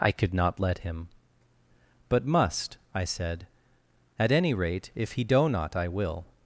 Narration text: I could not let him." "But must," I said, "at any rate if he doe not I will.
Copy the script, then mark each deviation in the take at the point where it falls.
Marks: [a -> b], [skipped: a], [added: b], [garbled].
I could not let him." "But must," I said, "at any rate if he doe not I will.